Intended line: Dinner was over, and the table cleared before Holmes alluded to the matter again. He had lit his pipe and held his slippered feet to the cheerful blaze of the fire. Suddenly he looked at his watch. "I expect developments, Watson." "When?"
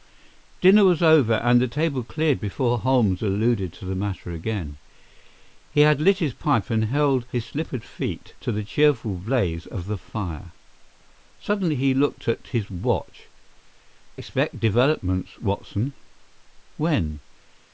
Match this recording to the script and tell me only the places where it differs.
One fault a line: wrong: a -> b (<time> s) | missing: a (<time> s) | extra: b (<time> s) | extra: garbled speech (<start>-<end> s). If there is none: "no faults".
missing: I (13.3 s)